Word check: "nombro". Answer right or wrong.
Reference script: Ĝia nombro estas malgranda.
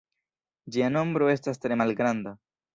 right